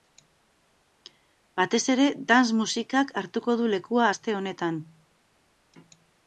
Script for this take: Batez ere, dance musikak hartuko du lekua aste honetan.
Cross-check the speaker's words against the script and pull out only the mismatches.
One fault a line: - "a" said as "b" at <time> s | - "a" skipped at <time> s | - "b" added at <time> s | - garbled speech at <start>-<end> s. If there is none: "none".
none